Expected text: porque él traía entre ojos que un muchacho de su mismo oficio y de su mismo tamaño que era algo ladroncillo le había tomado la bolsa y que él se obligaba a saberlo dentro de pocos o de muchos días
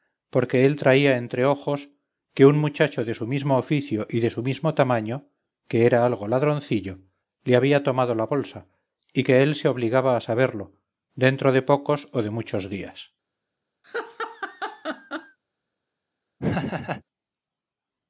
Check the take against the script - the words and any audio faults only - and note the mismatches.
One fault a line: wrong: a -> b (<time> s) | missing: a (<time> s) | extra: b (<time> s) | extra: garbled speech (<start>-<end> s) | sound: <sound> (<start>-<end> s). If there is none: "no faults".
sound: laugh (13.8-15.4 s)
sound: laugh (16.4-17.0 s)